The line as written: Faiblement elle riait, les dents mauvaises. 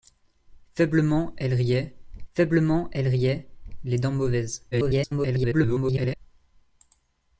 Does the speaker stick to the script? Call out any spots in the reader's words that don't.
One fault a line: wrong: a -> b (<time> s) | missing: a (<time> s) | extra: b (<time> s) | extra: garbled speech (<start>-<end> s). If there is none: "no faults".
extra: faiblement elle riait (2.3 s)
extra: garbled speech (4.7-6.2 s)